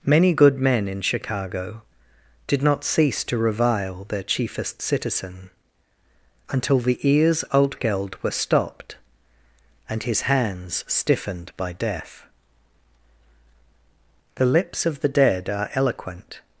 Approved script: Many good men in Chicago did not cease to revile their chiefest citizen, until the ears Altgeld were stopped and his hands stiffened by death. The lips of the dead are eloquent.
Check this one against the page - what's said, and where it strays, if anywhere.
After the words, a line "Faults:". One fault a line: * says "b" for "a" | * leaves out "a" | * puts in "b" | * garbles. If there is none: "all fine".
Many good men in Chicago did not cease to revile their chiefest citizen, until the ears Altgeld were stopped and his hands stiffened by death. The lips of the dead are eloquent.
Faults:
all fine